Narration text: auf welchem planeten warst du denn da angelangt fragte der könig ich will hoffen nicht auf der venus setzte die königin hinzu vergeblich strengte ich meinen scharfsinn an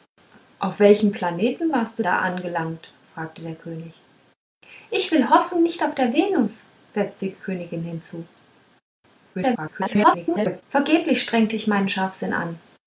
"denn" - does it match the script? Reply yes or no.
no